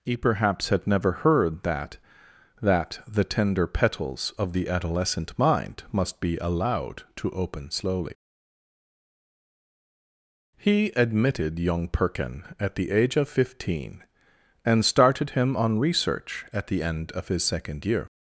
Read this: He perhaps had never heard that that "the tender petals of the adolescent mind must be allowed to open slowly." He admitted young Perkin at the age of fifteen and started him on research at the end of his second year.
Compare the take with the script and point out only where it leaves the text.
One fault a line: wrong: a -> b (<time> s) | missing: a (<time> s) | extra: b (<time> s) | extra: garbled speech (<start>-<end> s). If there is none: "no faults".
no faults